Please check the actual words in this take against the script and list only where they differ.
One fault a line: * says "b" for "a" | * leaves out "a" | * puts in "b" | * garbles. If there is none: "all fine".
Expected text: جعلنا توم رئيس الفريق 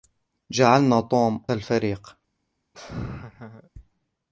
* leaves out "رئيس"